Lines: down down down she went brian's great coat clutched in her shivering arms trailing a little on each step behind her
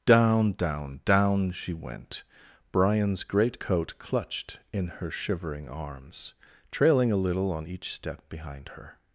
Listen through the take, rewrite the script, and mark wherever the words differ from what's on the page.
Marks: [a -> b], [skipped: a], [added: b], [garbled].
down down down she went brian's great coat clutched in her shivering arms trailing a little on each step behind her